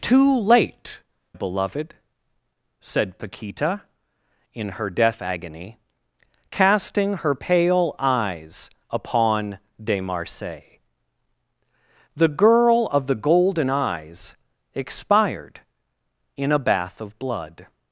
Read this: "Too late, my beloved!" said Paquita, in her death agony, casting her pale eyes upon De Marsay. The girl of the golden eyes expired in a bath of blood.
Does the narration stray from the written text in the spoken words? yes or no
yes